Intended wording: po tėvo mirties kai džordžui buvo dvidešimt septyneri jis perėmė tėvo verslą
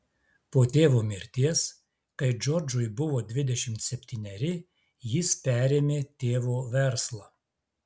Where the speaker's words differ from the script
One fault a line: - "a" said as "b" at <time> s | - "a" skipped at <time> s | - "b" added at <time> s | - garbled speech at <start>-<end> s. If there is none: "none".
none